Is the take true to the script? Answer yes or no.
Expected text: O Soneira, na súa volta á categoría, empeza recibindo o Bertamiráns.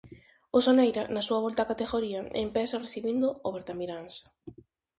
yes